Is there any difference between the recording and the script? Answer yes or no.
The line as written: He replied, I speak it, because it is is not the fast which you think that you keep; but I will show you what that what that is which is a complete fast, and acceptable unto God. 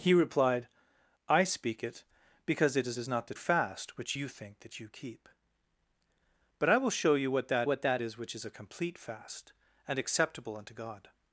no